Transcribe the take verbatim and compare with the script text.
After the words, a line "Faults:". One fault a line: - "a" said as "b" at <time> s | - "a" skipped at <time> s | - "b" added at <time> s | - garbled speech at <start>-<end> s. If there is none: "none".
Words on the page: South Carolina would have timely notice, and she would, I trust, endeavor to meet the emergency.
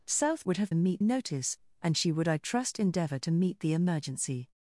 South Would have meet notice, and she would, I trust, endeavor to meet the emergency.
Faults:
- "Carolina" skipped at 0.5 s
- "timely" said as "meet" at 0.7 s